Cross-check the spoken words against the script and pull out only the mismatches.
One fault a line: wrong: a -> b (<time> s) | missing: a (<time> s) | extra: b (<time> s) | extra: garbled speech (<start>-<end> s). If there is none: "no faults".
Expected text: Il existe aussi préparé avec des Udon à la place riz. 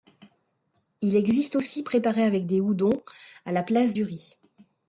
extra: du (3.9 s)